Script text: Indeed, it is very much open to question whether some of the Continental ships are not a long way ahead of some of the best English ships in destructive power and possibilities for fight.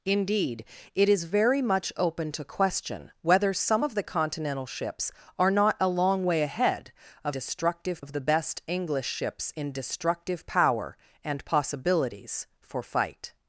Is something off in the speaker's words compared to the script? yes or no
yes